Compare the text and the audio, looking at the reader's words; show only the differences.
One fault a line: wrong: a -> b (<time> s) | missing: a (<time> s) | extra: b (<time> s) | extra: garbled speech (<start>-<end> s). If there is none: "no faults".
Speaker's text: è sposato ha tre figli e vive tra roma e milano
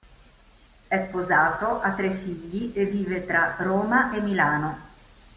no faults